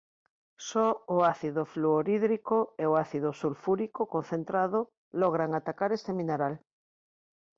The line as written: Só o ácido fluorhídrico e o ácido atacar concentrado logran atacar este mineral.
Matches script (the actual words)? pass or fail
fail